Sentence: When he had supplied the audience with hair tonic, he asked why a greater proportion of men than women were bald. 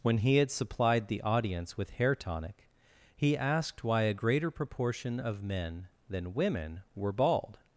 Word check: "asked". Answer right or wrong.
right